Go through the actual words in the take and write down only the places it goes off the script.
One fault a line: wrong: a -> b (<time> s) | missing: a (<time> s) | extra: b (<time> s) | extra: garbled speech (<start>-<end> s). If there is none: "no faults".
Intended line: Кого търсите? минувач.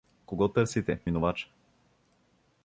no faults